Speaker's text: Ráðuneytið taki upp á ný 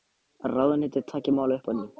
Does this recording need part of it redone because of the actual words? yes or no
yes